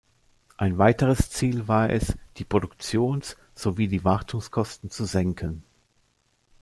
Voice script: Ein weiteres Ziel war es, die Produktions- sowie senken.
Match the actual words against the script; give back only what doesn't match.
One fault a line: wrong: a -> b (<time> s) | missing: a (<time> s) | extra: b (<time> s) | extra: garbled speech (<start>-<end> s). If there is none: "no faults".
extra: die Wartungskosten zu (3.9 s)